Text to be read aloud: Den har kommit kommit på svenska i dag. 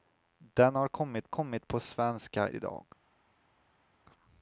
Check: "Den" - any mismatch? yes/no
no